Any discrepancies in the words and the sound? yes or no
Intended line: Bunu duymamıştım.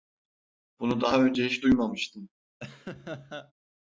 yes